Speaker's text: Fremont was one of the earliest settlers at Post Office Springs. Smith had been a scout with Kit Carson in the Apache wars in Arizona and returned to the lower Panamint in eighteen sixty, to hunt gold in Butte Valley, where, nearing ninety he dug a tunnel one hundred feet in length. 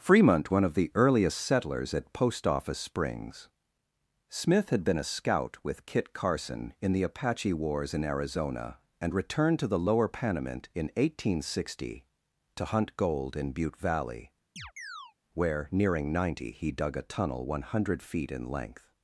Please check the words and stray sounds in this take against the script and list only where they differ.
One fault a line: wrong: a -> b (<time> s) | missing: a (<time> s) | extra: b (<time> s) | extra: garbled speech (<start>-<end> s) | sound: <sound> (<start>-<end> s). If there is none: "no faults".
missing: was (0.5 s)
sound: chirp (14.6-15.1 s)